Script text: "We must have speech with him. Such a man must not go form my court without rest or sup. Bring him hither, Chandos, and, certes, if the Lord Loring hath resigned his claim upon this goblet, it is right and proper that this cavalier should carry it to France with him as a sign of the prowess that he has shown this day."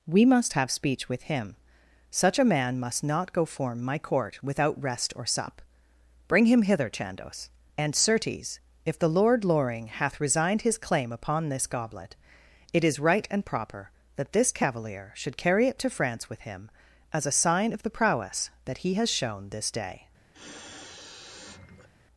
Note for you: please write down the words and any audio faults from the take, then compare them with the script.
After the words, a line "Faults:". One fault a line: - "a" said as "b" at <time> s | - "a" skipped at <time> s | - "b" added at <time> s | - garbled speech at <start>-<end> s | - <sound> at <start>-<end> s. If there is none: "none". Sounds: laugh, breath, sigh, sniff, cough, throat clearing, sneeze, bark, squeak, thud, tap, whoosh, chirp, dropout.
"We must have speech with him. Such a man must not go form my court without rest or sup. Bring him hither, Chandos, and, certes, if the Lord Loring hath resigned his claim upon this goblet, it is right and proper that this cavalier should carry it to France with him as a sign of the prowess that he has shown this day."
Faults:
- sniff at 20.3-21.9 s